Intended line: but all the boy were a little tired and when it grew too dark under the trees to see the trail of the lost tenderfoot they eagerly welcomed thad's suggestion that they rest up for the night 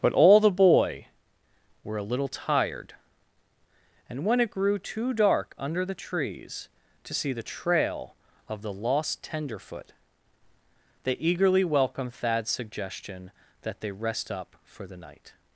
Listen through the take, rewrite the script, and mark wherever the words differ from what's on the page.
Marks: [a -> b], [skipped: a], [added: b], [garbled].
but all the boy were a little tired and when it grew too dark under the trees to see the trail of the lost tenderfoot they eagerly welcomed thad's suggestion that they rest up for the night